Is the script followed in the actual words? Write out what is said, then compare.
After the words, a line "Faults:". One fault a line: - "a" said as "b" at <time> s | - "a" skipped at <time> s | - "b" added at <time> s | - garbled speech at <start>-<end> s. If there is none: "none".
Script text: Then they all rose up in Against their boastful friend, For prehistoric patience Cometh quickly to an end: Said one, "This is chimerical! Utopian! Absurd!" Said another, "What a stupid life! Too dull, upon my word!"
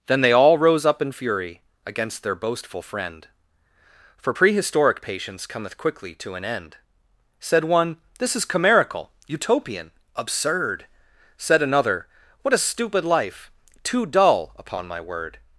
Then they all rose up in fury Against their boastful friend, For prehistoric patience Cometh quickly to an end: Said one, "This is chimerical! Utopian! Absurd!" Said another, "What a stupid life! Too dull, upon my word!"
Faults:
- "fury" added at 1.1 s